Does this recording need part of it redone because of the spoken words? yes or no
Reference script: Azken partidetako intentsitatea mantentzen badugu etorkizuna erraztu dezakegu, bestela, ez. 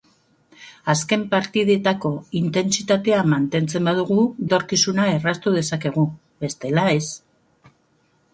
no